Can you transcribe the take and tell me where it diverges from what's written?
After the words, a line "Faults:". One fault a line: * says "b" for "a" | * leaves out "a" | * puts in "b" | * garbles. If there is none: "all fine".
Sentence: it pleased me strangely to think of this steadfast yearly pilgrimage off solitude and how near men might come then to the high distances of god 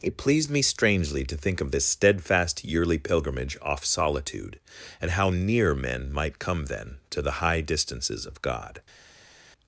it pleased me strangely to think of this steadfast yearly pilgrimage off solitude and how near men might come then to the high distances of god
Faults:
all fine